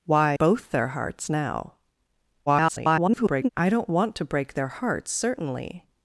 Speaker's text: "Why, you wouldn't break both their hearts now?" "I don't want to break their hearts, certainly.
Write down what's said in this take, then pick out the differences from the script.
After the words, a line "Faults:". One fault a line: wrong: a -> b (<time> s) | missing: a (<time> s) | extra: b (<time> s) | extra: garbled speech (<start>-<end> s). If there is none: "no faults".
"Why, both their hearts now?" [garbled] "I don't want to break their hearts, certainly.
Faults:
missing: you wouldn't break (0.3 s)
extra: garbled speech (2.5-3.5 s)